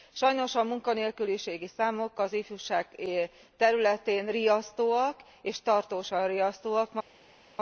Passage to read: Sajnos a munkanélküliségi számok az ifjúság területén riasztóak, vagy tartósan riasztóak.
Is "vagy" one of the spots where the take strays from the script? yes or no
yes